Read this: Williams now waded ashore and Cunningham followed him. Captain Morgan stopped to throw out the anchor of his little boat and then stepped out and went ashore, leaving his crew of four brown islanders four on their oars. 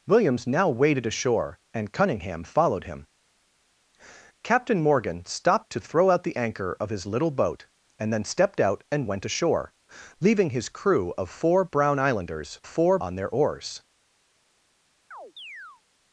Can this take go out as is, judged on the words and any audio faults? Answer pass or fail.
fail